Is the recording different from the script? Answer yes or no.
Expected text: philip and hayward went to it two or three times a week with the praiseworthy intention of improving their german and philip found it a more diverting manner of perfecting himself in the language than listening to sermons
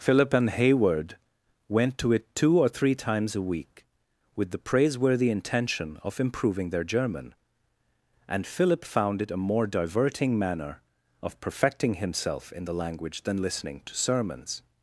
no